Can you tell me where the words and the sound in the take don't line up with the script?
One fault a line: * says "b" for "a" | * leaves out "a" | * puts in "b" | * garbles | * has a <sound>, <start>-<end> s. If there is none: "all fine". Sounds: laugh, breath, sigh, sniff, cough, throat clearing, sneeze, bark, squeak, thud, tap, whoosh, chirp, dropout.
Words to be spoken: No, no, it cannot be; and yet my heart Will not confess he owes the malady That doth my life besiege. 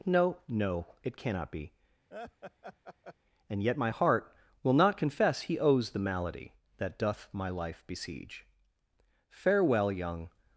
* has a laugh, 2.1-3.1 s
* puts in "Farewell young"